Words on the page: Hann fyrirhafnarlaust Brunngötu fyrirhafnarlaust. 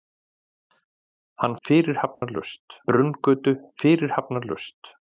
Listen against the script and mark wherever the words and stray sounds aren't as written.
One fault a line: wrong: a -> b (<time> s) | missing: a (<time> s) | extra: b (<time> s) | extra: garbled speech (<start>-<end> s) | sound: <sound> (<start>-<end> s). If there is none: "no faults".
sound: dropout (2.1-2.2 s)